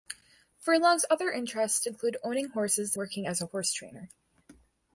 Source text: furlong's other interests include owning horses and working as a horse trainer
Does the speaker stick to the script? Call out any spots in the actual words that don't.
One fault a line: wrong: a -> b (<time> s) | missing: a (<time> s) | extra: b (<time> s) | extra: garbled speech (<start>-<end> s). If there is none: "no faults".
missing: and (3.0 s)